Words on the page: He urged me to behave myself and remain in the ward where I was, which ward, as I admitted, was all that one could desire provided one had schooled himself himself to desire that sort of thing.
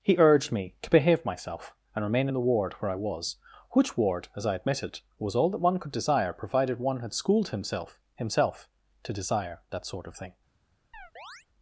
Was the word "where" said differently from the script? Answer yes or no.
no